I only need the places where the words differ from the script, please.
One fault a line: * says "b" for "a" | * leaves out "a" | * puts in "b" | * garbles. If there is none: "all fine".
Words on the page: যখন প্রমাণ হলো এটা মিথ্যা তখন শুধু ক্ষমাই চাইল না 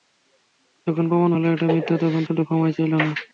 all fine